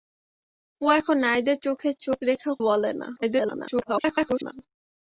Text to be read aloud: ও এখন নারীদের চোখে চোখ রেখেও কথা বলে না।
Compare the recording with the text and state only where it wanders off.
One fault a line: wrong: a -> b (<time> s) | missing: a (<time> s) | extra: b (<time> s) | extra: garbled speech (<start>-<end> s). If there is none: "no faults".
missing: কথা (2.5 s)
extra: garbled speech (3.2-4.5 s)